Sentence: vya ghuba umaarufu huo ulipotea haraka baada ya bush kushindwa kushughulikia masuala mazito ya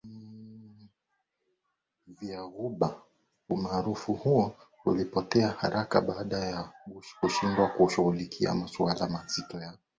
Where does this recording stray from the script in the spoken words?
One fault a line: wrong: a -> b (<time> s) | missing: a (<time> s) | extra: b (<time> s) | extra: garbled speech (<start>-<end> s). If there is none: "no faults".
no faults